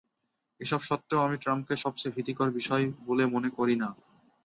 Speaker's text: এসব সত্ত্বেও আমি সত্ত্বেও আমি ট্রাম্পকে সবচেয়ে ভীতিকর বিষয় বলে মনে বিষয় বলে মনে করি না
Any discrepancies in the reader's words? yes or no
yes